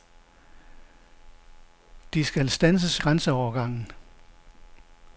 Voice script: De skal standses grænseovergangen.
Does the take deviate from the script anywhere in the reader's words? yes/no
no